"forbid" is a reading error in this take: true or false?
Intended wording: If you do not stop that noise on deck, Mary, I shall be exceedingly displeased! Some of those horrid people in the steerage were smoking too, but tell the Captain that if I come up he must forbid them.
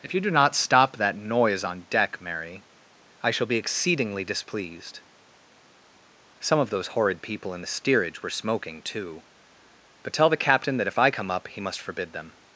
false